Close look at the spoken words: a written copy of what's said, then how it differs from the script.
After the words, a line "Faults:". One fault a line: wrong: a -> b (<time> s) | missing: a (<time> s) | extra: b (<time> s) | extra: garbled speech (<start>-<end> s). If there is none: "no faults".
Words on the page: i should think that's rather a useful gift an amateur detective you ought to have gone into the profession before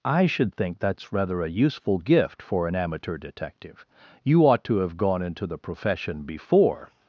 i should think that's rather a useful gift for an amateur detective you ought to have gone into the profession before
Faults:
extra: for (2.4 s)